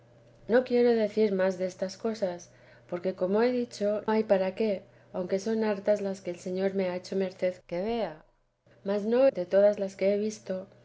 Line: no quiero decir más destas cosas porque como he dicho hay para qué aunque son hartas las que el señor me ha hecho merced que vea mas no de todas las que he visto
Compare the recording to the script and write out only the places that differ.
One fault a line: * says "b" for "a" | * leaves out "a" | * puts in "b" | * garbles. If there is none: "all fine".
all fine